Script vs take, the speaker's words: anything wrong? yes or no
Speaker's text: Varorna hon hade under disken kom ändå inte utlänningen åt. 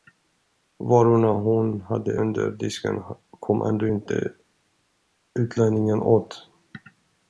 no